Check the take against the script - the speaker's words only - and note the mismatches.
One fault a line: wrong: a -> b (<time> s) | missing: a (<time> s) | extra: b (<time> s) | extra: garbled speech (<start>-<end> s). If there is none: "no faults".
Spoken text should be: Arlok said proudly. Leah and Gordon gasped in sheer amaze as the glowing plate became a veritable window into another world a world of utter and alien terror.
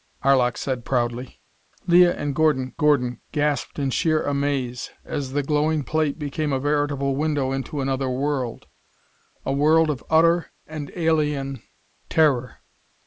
extra: Gordon (2.8 s)